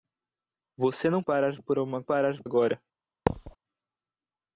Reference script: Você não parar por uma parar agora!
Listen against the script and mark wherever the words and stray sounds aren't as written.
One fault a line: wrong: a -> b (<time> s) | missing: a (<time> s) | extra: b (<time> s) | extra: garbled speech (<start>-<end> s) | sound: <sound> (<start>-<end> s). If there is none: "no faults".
sound: thud (3.3-3.6 s)